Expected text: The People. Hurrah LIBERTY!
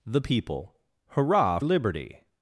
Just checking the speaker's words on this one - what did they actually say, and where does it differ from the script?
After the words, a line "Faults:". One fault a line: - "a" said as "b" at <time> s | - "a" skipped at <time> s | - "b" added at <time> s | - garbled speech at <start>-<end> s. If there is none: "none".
The People. Hurrah LIBERTY!
Faults:
none